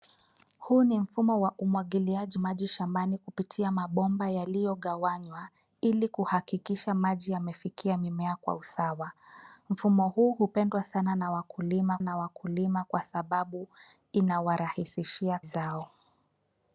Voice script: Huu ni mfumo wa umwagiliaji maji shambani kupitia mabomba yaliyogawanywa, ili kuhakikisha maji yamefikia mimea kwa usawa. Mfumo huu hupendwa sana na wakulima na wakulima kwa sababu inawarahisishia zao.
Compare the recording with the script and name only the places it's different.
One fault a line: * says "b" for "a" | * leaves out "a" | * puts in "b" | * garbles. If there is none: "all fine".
all fine